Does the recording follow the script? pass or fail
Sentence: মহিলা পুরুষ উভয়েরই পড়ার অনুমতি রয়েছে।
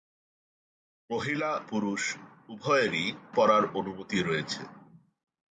pass